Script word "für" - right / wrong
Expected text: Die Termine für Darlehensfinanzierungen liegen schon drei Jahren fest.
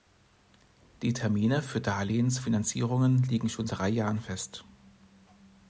right